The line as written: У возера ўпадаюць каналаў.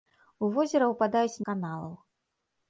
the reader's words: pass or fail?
pass